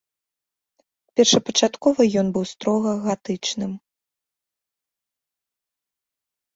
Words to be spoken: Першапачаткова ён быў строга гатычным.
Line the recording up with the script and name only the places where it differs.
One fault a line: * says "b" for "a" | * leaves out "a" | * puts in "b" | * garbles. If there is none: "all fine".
all fine